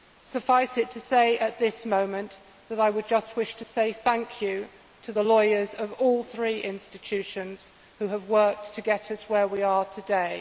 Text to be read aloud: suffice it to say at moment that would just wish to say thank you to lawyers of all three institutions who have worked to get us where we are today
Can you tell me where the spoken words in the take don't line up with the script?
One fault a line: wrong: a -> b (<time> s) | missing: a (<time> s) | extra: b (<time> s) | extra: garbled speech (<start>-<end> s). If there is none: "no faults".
extra: this (1.6 s)
extra: i (2.8 s)
extra: the (5.1 s)